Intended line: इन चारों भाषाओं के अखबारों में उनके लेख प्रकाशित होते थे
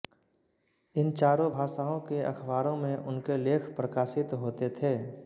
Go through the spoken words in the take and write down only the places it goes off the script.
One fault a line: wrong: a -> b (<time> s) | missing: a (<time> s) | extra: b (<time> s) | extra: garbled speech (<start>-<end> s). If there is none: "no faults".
no faults